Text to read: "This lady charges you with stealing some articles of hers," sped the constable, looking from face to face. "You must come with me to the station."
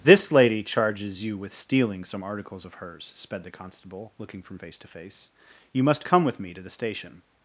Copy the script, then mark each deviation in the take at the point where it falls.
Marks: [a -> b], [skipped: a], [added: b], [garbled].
"This lady charges you with stealing some articles of hers," sped the constable, looking from face to face. "You must come with me to the station."